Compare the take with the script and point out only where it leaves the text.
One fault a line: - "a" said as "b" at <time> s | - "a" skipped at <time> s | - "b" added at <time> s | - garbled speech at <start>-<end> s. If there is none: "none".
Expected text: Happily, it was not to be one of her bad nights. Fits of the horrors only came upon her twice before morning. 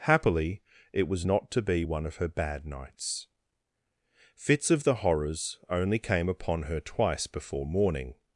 none